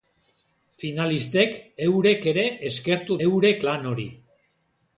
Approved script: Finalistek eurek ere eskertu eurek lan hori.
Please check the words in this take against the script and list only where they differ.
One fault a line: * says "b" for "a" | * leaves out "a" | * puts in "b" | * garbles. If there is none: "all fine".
all fine